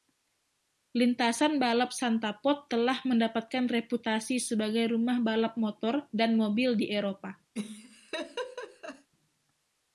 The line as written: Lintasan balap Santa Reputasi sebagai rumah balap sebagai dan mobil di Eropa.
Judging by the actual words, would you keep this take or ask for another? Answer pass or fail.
fail